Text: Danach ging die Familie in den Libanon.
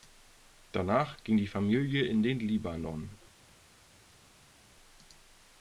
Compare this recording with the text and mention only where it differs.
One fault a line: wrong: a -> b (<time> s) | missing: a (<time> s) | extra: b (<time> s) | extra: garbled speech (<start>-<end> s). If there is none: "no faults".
no faults